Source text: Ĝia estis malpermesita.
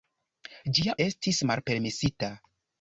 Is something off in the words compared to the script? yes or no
no